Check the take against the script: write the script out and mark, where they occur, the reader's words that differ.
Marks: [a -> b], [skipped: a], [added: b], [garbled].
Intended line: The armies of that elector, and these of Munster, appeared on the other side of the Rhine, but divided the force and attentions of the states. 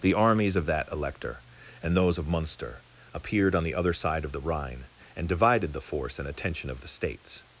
The armies of that elector, and [these -> those] of Munster, appeared on the other side of the Rhine, [but -> and] divided the force and [attentions -> attention] of the states.